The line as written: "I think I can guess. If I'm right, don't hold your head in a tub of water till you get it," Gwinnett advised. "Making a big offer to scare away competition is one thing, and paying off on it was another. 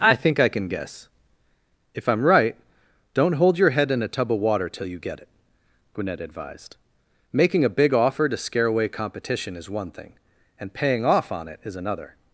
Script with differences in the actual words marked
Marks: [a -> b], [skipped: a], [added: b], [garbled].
"I think I can guess. If I'm right, don't hold your head in a tub of water till you get it," Gwinnett advised. "Making a big offer to scare away competition is one thing, and paying off on it [was -> is] another.